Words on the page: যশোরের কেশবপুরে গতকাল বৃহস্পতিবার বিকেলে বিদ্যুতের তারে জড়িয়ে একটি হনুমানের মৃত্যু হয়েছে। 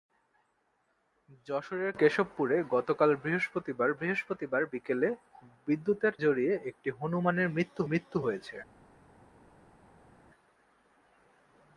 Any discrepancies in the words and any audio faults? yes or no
yes